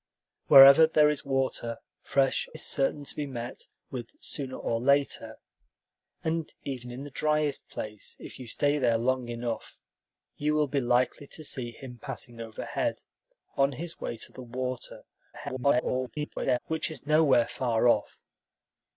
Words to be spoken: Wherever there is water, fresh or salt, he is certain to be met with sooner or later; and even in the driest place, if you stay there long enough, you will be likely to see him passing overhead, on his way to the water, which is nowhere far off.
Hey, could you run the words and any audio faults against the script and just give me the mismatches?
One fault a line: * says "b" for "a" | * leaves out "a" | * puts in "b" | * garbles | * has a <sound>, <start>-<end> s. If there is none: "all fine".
* leaves out "or salt he"
* garbles